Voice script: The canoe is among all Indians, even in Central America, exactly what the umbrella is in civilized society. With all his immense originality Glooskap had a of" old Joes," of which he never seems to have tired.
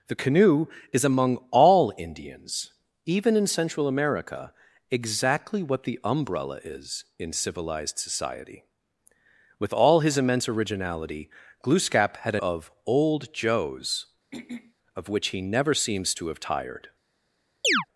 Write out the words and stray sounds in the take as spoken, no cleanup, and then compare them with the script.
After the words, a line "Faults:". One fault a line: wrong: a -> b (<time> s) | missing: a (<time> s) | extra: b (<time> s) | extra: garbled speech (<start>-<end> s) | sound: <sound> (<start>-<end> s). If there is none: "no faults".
The canoe is among all Indians, even in Central America, exactly what the umbrella is in civilized society. With all his immense originality Glooskap had a of" old Joes," of which he never seems to have tired.
Faults:
sound: throat clearing (14.3-14.7 s)
sound: chirp (17.6-17.9 s)